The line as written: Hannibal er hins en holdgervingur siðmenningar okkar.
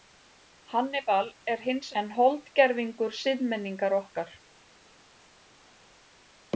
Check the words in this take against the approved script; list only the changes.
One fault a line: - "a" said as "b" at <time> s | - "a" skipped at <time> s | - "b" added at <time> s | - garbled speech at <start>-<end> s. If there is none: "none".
none